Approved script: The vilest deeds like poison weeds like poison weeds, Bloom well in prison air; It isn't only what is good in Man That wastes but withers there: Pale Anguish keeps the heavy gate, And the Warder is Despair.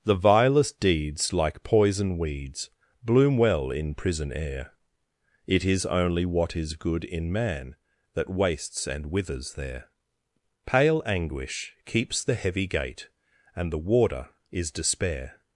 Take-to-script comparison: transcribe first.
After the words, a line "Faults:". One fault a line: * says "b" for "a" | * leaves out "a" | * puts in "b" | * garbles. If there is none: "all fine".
The vilest deeds like poison weeds, Bloom well in prison air; It is only what is good in Man That wastes and withers there: Pale Anguish keeps the heavy gate, And the Warder is Despair.
Faults:
* leaves out "like poison weeds"
* says "is" for "isn't"
* says "and" for "but"